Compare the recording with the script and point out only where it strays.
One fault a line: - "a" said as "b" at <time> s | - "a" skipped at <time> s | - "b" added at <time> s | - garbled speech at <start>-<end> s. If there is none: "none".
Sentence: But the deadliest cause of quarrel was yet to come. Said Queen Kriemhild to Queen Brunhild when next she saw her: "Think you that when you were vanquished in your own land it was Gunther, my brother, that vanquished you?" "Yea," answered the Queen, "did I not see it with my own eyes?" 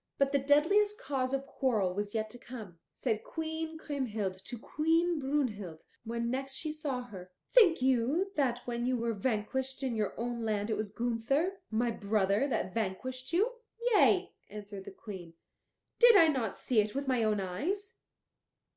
none